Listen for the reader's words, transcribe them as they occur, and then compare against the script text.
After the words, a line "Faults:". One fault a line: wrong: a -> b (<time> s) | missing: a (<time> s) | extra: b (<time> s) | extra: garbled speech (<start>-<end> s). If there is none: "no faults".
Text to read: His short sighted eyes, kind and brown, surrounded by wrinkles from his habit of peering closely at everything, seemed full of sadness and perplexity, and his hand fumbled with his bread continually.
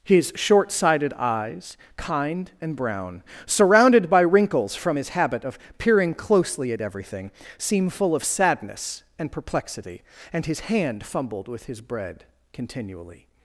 His short sighted eyes, kind and brown, surrounded by wrinkles from his habit of peering closely at everything, seem full of sadness and perplexity, and his hand fumbled with his bread continually.
Faults:
wrong: seemed -> seem (7.6 s)